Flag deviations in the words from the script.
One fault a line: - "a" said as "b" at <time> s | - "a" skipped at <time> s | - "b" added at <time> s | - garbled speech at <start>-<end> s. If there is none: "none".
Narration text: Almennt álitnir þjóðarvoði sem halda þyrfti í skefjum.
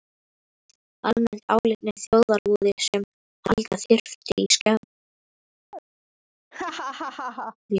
none